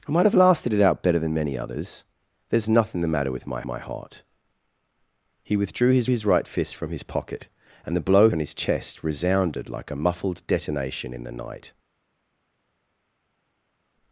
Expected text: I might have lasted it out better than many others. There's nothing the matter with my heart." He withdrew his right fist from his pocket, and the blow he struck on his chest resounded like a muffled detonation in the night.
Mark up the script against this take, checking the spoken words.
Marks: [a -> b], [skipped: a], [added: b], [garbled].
I might have lasted it out better than many others. There's nothing the matter with my [added: my] heart." He withdrew his [added: his] right fist from his pocket, and the blow [skipped: he struck] on his chest resounded like a muffled detonation in the night.